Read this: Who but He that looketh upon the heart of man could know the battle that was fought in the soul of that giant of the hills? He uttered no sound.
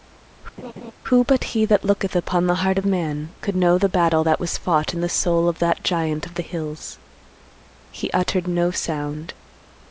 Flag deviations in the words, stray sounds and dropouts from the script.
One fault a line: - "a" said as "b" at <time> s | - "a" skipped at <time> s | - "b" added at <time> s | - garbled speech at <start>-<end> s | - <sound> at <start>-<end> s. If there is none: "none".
- laugh at 0.6-0.9 s